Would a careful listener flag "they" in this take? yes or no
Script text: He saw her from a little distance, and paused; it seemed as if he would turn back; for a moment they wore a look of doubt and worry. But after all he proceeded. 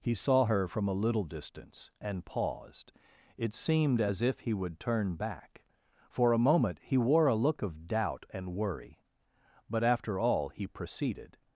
yes